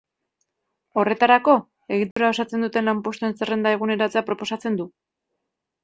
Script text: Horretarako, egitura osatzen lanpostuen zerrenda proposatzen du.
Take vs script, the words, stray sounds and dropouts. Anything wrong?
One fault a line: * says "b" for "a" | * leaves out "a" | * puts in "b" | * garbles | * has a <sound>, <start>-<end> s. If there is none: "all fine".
* has a dropout, 2.1-2.2 s
* puts in "duten"
* puts in "eguneratzea"